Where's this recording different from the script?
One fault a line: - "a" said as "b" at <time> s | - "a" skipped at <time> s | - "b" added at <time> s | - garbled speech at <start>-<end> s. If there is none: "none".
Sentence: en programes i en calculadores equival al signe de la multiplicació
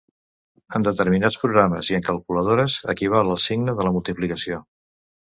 - "determinats" added at 0.8 s